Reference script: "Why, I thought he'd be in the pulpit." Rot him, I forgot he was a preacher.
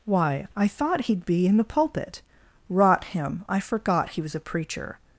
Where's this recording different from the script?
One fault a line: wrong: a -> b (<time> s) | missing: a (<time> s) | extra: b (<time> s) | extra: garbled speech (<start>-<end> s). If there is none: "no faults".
no faults